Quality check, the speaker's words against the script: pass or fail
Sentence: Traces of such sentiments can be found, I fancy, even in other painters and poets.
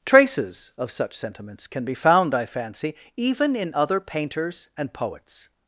pass